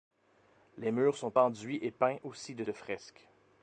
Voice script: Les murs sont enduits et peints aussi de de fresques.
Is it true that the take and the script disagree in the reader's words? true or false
false